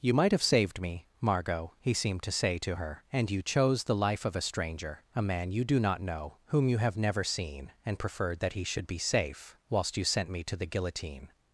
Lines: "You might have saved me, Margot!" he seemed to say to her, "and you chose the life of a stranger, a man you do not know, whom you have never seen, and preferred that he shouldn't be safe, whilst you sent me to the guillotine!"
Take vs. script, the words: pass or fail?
fail